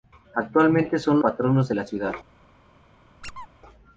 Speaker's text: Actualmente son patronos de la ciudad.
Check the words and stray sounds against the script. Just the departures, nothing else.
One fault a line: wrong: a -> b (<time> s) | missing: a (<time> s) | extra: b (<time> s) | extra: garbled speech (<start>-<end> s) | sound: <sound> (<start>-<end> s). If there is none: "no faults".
sound: squeak (3.2-3.5 s)